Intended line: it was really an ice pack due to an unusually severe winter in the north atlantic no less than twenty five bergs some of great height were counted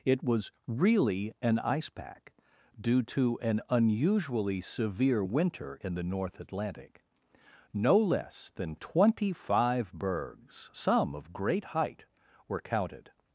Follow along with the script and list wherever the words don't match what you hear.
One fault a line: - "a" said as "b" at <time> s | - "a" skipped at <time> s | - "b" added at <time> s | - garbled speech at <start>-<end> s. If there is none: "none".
none